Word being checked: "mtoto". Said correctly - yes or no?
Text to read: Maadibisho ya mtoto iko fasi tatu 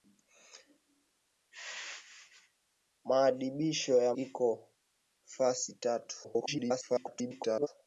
no